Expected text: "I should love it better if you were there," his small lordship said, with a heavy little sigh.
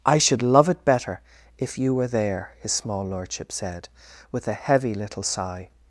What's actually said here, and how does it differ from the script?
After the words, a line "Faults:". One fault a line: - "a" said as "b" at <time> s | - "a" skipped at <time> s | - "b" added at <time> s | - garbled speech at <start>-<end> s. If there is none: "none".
"I should love it better if you were there," his small lordship said, with a heavy little sigh.
Faults:
none